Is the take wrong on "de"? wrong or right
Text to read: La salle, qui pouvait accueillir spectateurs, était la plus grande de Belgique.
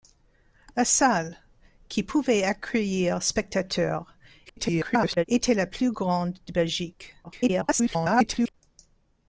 right